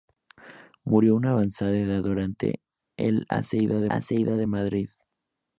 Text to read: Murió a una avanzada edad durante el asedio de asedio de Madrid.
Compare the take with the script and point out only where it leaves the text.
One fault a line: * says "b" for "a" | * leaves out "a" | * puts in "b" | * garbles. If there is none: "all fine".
all fine